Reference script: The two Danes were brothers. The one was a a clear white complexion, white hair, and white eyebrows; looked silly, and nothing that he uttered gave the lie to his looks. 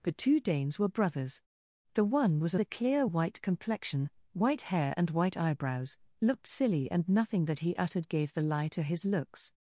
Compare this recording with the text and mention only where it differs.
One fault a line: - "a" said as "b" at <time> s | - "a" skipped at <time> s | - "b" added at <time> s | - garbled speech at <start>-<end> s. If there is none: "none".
none